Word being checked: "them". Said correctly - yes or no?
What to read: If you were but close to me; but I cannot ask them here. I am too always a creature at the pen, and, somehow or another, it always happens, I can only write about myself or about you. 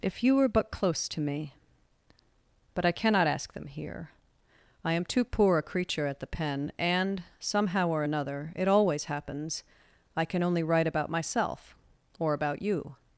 yes